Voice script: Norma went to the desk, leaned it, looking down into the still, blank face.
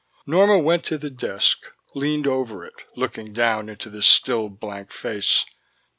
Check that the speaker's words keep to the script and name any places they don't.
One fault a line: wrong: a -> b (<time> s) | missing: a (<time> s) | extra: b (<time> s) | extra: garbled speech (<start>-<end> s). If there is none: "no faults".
extra: over (2.2 s)